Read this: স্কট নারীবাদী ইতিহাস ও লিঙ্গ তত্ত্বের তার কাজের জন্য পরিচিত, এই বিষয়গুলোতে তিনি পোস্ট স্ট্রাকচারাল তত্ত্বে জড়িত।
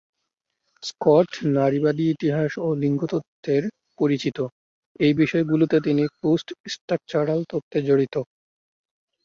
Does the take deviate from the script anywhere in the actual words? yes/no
yes